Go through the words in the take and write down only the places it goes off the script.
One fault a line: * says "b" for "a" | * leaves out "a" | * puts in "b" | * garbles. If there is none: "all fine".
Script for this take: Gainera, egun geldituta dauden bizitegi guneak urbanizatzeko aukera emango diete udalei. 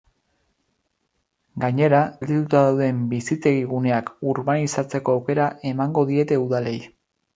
* leaves out "egun"